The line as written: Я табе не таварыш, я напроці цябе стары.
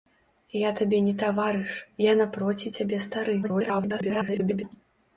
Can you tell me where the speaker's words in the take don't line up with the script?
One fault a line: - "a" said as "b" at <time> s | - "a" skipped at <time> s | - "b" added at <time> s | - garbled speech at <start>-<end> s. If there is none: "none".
- garbled speech at 3.4-4.6 s